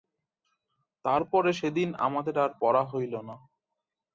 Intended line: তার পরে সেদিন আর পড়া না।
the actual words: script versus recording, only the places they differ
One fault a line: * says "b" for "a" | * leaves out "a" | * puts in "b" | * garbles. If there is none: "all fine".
* puts in "আমাদের"
* puts in "হইল"